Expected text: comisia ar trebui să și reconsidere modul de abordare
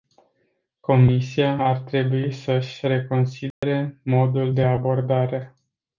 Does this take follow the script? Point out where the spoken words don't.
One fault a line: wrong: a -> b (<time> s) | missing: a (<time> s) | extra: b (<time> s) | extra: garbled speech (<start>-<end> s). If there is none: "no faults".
no faults